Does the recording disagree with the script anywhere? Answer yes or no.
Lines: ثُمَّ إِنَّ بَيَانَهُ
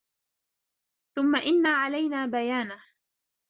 yes